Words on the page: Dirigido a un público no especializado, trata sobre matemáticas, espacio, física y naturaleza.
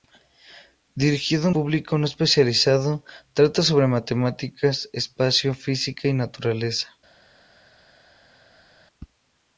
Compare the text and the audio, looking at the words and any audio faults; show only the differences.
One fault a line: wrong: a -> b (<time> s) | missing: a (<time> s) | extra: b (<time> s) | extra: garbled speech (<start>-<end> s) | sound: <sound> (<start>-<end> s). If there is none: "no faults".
missing: un (1.5 s)